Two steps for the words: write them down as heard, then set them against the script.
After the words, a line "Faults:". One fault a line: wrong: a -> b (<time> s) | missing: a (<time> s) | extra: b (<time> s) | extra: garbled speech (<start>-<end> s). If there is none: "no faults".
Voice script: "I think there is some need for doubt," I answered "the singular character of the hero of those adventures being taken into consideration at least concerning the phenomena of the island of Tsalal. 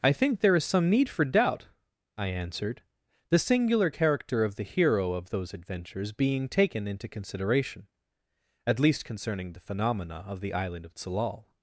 "I think there is some need for doubt," I answered "the singular character of the hero of those adventures being taken into consideration at least concerning the phenomena of the island of Tsalal.
Faults:
no faults